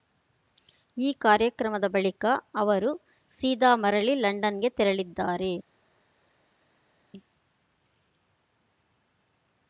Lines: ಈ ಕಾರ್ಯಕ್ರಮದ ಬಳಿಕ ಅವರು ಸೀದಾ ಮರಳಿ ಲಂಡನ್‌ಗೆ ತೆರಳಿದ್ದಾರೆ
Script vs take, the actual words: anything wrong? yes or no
no